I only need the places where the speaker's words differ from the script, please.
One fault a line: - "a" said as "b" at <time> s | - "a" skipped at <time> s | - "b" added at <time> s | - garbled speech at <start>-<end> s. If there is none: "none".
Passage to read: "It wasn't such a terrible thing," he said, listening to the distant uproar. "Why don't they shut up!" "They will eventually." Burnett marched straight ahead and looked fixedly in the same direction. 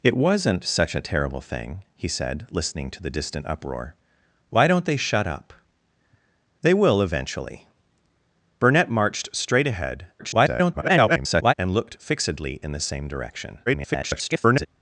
- garbled speech at 10.2-11.5 s
- garbled speech at 13.7-14.7 s